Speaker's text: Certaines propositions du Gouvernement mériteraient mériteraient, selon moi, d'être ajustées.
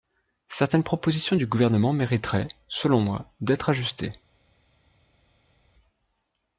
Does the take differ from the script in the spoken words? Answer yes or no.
yes